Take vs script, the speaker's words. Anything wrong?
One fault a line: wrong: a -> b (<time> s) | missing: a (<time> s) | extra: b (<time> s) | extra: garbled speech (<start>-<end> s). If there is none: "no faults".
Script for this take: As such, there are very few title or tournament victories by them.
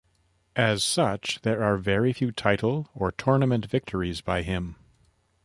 wrong: them -> him (4.4 s)